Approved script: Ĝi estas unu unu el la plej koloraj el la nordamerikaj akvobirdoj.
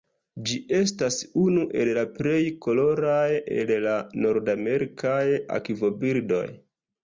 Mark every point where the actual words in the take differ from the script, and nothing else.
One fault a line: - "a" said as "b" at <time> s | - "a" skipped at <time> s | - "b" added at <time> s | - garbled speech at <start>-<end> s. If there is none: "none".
- "unu" skipped at 1.6 s